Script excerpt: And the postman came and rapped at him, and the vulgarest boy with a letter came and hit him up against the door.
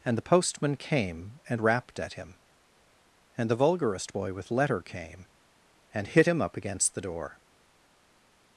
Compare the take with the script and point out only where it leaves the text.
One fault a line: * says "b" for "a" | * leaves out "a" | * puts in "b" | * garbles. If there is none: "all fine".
* leaves out "a"